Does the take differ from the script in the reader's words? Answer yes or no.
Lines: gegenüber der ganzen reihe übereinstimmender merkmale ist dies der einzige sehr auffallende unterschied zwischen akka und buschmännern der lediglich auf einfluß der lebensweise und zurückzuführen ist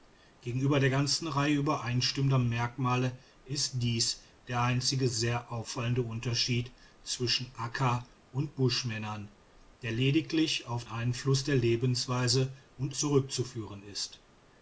no